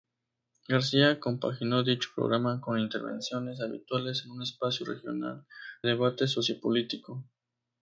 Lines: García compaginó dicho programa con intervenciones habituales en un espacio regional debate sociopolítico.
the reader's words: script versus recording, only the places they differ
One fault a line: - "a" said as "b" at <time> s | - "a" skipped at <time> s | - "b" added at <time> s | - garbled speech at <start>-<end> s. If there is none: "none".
none